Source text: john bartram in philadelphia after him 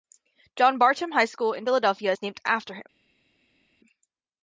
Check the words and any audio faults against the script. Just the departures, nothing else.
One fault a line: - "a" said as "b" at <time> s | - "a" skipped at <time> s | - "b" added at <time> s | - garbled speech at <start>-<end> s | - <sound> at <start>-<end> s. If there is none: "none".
- "high school" added at 1.1 s
- "is named" added at 2.1 s